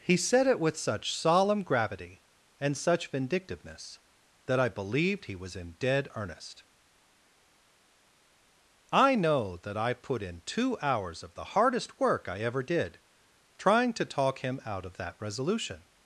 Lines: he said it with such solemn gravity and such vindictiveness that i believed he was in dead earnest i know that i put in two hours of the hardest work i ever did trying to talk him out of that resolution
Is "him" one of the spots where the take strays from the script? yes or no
no